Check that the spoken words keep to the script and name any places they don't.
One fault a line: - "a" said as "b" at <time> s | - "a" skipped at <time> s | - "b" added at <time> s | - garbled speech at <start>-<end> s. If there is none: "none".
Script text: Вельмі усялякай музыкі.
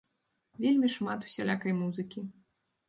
- "шмат" added at 0.9 s